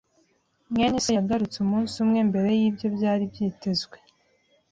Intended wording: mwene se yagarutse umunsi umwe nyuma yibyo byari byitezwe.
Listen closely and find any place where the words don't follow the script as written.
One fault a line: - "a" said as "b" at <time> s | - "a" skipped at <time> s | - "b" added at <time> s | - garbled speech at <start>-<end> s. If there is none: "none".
- "nyuma" said as "mbere" at 2.3 s